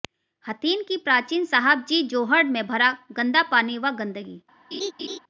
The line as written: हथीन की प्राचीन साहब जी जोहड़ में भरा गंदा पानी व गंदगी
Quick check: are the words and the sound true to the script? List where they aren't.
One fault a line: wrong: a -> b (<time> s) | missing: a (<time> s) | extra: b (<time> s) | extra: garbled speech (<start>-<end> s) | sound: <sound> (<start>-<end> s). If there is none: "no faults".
sound: laugh (4.7-5.2 s)